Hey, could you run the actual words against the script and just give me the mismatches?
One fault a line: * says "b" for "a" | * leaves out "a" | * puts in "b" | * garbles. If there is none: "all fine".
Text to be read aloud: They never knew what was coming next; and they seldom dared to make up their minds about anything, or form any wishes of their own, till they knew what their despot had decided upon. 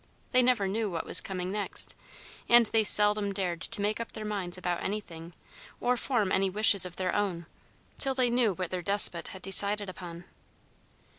all fine